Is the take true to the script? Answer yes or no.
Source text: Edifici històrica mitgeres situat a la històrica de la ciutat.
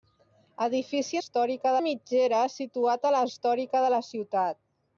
yes